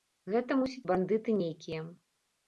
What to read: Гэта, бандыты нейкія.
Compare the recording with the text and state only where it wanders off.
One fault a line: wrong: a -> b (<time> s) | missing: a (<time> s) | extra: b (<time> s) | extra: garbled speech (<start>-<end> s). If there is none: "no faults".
extra: мусіць (0.6 s)